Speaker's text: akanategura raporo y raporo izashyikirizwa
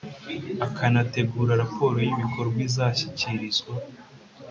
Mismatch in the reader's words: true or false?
true